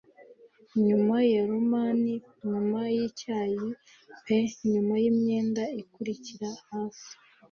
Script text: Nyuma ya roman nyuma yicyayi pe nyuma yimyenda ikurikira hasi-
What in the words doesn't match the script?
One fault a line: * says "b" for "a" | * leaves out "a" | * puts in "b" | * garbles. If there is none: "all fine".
all fine